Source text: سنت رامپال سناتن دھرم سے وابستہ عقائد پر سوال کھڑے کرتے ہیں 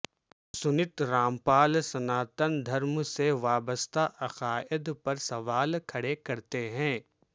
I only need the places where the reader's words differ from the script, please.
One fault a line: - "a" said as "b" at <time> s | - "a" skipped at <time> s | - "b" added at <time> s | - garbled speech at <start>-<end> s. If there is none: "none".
none